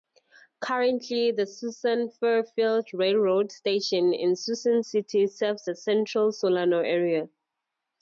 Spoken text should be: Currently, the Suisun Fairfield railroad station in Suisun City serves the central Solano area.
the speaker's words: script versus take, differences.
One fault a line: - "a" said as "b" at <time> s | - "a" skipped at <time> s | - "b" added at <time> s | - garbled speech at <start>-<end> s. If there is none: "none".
none